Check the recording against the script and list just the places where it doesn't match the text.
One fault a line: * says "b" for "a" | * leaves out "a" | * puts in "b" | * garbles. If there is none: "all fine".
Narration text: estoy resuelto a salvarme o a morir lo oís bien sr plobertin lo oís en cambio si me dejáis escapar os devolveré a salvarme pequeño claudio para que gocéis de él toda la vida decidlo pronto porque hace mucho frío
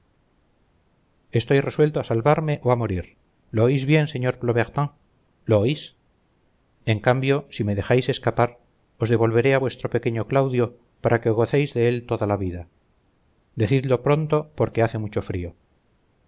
* says "vuestro" for "salvarme"